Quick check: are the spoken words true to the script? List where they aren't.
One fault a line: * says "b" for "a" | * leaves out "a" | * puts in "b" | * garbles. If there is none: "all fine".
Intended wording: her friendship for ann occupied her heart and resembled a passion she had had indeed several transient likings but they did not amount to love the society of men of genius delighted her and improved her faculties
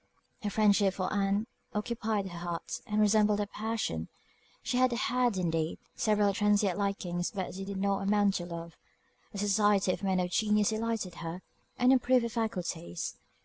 all fine